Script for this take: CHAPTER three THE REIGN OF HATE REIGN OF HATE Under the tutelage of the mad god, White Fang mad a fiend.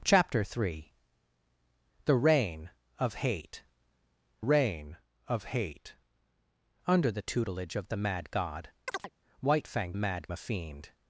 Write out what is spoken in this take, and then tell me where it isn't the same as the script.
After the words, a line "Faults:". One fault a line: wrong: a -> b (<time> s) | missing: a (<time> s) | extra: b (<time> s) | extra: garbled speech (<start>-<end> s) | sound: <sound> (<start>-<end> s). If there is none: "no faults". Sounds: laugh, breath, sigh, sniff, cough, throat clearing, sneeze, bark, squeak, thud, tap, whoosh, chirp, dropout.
CHAPTER three THE REIGN OF HATE REIGN OF HATE Under the tutelage of the mad god, White Fang mad a fiend.
Faults:
sound: chirp (8.9-9.1 s)